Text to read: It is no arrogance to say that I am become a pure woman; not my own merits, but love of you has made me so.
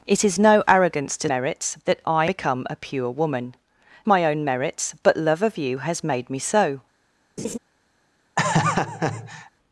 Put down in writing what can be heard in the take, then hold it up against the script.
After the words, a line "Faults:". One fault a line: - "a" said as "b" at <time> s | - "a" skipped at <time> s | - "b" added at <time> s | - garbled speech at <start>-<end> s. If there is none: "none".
It is no arrogance to merits that I become a pure woman; my own merits, but love of you has made me so.
Faults:
- "say" said as "merits" at 1.3 s
- "am" skipped at 2.2 s
- "not" skipped at 3.5 s